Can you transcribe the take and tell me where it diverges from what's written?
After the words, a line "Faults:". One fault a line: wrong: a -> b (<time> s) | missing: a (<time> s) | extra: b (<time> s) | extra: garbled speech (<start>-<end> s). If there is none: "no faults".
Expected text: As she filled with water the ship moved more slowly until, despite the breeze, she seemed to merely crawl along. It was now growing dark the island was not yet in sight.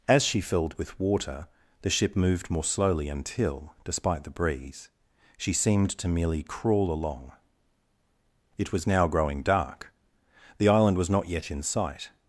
As she filled with water the ship moved more slowly until, despite the breeze, she seemed to merely crawl along. It was now growing dark the island was not yet in sight.
Faults:
no faults